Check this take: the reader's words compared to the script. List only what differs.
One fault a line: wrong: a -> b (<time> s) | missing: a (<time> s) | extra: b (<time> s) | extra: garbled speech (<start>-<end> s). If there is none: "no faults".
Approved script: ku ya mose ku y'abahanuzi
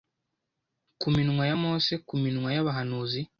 extra: minwa (1.1 s)
extra: minwa (2.2 s)